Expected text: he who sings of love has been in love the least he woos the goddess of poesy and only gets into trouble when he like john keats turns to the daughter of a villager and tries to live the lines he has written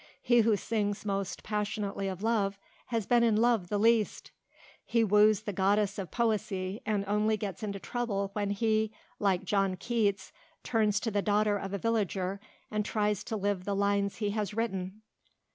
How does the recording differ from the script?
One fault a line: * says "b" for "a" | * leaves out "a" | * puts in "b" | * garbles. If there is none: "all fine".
* puts in "most passionately"